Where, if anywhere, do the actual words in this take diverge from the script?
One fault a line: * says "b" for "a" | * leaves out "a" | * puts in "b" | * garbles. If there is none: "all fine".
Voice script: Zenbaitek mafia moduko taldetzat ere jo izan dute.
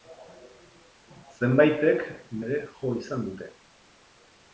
* leaves out "mafia moduko taldetzat"